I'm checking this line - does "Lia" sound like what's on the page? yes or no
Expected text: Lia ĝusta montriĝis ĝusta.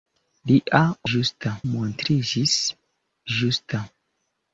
yes